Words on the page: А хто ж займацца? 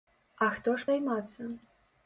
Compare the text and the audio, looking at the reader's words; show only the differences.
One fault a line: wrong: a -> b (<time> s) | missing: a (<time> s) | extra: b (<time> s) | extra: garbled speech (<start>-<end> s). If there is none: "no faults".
no faults